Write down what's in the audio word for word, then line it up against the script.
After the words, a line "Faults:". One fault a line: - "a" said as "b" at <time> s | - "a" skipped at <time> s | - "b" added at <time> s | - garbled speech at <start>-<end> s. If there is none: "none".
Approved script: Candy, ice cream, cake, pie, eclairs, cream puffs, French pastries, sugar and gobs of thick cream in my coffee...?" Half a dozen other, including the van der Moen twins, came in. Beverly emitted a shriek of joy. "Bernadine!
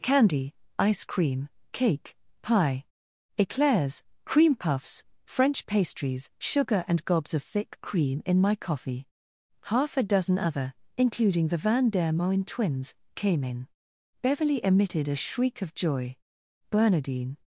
Candy, ice cream, cake, pie, eclairs, cream puffs, French pastries, sugar and gobs of thick cream in my coffee...?" Half a dozen other, including the van der Moen twins, came in. Beverly emitted a shriek of joy. "Bernadine!
Faults:
none